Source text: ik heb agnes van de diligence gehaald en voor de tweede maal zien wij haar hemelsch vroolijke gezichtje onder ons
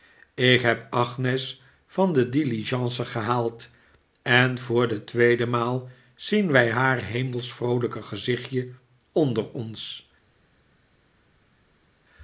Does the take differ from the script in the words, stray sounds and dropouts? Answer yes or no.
no